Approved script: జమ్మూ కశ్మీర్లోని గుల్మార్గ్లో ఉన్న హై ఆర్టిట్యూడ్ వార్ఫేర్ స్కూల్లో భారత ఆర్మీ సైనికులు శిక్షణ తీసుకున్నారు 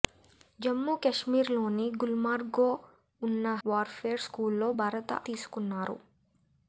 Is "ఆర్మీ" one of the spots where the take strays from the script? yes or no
yes